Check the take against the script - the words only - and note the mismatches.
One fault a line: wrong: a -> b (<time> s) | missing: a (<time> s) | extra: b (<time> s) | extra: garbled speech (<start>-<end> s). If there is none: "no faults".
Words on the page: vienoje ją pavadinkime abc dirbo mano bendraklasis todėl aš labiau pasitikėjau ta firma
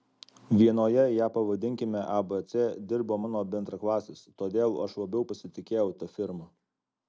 no faults